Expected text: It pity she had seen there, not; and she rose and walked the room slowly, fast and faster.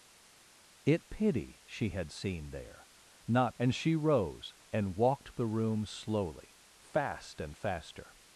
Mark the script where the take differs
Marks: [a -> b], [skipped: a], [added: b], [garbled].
It pity she had seen there, not; and she rose and walked the room slowly, fast and faster.